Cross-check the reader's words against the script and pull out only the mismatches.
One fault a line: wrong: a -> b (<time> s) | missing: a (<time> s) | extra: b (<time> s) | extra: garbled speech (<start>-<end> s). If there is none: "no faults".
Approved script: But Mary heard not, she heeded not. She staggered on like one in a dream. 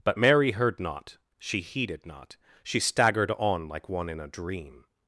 no faults